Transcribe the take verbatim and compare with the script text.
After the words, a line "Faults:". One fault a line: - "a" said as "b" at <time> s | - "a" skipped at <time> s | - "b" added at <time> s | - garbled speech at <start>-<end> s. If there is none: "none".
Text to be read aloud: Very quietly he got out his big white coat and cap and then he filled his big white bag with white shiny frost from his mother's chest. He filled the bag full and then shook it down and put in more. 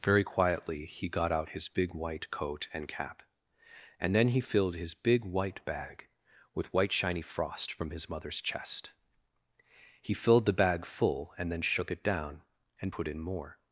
Very quietly he got out his big white coat and cap and then he filled his big white bag with white shiny frost from his mother's chest. He filled the bag full and then shook it down and put in more.
Faults:
none